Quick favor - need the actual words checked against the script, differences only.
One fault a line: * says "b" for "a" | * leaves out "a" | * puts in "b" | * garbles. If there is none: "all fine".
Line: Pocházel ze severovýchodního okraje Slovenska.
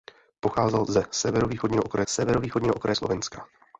* puts in "severovýchodního okraje"